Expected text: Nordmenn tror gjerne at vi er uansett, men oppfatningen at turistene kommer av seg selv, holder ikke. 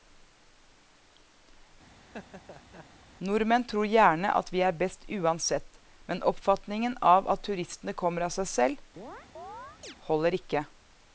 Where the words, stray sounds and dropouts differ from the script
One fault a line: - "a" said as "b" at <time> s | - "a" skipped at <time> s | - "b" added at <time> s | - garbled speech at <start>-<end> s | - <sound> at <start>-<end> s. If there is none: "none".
- laugh at 2.0-2.9 s
- "best" added at 4.8 s
- "av" added at 7.1 s
- chirp at 9.0-10.0 s